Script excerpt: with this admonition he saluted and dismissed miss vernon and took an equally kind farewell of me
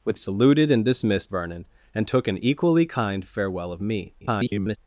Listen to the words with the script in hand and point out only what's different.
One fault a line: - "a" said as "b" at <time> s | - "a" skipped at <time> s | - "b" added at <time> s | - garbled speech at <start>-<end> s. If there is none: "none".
- "this admonition he" skipped at 0.2 s
- "miss" skipped at 1.3 s
- garbled speech at 4.2-4.8 s